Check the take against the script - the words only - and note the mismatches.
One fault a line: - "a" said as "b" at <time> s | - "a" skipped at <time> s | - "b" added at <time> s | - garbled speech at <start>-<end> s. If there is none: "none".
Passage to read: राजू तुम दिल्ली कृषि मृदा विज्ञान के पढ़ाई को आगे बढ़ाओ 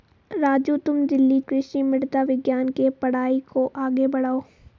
none